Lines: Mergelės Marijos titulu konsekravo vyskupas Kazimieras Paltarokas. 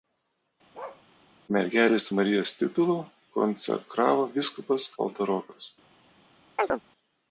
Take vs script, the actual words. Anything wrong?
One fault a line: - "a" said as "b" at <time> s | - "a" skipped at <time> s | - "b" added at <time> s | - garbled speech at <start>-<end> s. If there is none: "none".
- "Kazimieras" skipped at 4.9 s